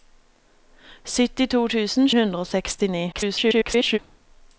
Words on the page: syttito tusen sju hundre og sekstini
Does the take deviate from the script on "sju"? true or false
true